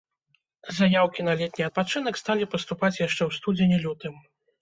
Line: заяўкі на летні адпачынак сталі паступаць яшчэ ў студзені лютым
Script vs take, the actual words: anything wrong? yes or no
no